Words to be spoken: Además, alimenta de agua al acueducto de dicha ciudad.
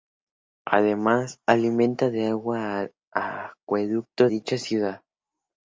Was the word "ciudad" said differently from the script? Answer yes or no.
no